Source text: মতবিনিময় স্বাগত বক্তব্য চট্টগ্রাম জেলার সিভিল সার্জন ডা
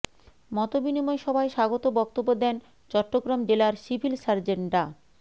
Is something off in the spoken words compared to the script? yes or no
yes